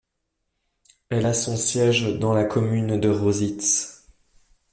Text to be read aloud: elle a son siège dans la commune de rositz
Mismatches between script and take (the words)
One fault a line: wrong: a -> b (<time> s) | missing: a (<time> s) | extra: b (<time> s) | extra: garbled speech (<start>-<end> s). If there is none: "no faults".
no faults